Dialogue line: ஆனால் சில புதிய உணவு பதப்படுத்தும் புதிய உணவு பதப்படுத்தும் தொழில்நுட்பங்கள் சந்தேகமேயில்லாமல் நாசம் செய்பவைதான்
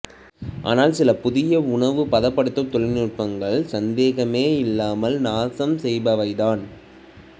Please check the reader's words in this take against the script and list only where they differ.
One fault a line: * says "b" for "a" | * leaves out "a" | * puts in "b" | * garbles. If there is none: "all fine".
* leaves out "புதிய உணவு பதப்படுத்தும்"